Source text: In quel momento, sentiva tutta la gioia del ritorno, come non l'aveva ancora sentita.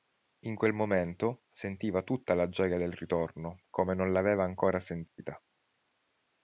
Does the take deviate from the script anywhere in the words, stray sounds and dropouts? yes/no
yes